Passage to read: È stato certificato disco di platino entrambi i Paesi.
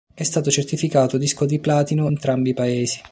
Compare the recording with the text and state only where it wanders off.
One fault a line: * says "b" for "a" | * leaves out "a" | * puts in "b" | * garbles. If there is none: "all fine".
all fine